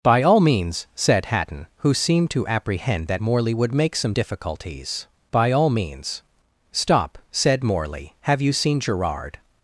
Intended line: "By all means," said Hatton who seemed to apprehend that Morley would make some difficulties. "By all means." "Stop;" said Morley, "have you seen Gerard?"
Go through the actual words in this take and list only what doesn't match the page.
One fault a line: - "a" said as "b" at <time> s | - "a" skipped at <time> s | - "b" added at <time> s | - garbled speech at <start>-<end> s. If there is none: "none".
none